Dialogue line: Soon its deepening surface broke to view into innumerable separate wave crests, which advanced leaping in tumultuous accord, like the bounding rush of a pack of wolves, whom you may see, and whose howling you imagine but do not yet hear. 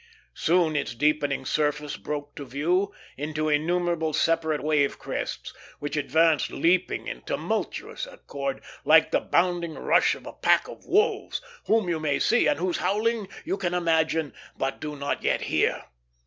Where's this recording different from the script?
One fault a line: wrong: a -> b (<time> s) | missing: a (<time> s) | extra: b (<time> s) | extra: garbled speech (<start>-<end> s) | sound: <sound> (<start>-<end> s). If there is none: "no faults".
extra: can (13.6 s)